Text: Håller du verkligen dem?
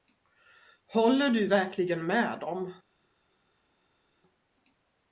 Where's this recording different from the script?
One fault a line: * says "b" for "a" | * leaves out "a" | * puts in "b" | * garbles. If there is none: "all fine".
* puts in "med"